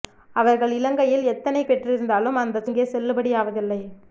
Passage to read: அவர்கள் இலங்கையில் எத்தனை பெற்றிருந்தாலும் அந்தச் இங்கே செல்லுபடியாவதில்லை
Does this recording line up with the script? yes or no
yes